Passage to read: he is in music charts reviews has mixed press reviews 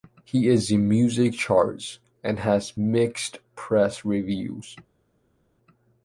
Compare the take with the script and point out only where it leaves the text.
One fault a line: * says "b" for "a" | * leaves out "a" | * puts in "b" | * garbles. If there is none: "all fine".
* says "and" for "reviews"